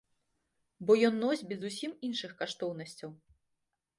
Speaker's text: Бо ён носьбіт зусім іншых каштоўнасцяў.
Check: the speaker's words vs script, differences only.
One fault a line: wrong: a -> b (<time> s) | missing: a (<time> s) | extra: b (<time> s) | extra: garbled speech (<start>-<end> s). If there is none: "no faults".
no faults